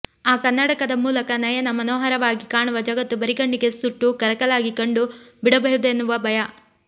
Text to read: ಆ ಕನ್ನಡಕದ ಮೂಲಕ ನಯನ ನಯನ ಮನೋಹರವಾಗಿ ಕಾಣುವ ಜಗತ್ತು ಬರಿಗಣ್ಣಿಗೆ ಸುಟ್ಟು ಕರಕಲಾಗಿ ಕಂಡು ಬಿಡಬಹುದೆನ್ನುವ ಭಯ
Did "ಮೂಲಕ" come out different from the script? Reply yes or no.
no